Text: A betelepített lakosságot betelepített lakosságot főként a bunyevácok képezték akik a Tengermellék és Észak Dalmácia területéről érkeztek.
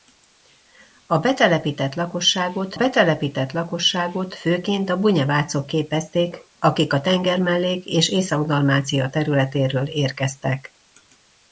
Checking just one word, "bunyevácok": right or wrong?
right